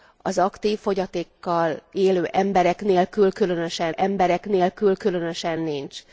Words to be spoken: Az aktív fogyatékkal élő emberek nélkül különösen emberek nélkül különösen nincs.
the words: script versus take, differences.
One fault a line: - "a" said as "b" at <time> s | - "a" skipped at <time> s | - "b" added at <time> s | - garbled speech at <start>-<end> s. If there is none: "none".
none